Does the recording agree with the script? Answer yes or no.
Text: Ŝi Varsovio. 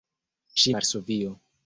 yes